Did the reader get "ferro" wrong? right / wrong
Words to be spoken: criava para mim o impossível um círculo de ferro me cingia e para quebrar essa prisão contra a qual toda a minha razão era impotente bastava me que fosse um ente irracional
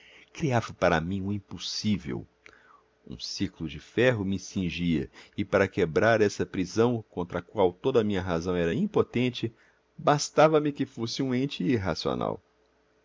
right